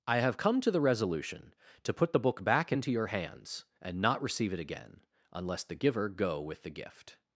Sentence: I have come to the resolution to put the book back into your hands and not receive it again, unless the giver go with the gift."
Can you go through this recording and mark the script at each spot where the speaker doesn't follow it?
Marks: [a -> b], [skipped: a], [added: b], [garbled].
I have come to the resolution to put the book back into your hands and not receive it again, unless the giver go with the gift."